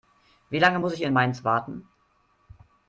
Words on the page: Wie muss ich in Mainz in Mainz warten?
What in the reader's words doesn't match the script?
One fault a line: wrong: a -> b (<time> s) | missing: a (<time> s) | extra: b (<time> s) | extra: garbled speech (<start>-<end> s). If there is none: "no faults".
extra: lange (0.6 s)
missing: in Mainz (1.4 s)